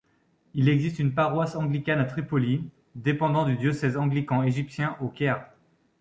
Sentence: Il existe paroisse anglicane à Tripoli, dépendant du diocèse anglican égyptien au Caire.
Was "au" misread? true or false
false